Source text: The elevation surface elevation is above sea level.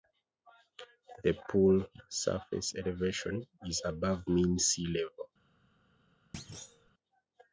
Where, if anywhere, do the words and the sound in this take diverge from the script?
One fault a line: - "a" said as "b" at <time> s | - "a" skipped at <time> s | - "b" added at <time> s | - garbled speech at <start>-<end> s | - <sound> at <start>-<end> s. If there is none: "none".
- "elevation" said as "pool" at 1.5 s
- "mean" added at 4.3 s
- thud at 6.3-6.9 s